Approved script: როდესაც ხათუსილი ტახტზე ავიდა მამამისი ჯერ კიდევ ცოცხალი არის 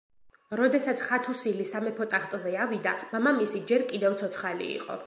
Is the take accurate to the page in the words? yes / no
no